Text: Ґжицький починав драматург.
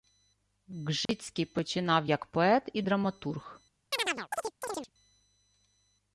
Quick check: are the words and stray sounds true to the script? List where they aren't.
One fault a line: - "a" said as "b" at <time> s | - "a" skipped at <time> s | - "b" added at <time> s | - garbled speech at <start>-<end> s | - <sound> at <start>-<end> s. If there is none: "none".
- dropout at 1.1-1.1 s
- "як поет і" added at 2.0 s
- chirp at 3.9-4.9 s